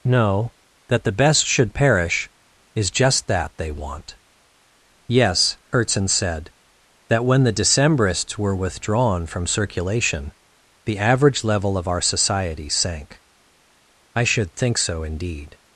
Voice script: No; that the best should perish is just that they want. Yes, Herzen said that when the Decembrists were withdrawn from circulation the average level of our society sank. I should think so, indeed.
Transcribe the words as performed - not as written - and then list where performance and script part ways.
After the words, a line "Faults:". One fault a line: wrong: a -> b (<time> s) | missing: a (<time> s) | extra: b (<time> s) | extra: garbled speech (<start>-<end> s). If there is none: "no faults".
No; that the best should perish is just that they want. Yes, Herzen said that when the Decembrists were withdrawn from circulation the average level of our society sank. I should think so, indeed.
Faults:
no faults